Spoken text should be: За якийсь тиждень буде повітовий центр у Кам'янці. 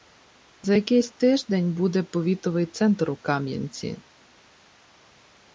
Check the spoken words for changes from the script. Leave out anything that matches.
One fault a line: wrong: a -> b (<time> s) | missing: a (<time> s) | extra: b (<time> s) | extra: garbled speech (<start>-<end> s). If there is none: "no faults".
no faults